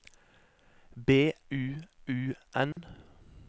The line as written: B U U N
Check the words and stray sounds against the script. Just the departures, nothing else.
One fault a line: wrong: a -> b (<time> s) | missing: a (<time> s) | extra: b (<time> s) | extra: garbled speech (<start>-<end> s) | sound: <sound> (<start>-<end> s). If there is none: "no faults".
sound: dropout (2.7-2.8 s)